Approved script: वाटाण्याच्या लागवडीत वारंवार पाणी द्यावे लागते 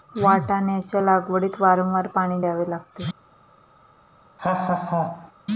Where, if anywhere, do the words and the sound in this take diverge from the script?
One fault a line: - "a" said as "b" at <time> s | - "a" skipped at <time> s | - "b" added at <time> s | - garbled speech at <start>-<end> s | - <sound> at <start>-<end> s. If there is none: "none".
- laugh at 4.4-5.3 s